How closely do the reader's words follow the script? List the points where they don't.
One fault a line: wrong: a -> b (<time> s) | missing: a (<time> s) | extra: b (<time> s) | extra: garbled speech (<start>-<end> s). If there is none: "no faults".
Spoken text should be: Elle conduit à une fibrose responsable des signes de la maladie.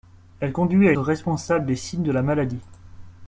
missing: une fibrose (0.9 s)